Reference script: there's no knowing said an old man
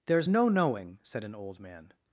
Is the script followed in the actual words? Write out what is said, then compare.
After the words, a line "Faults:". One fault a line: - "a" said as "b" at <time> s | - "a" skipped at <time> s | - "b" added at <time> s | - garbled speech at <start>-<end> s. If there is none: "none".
there's no knowing said an old man
Faults:
none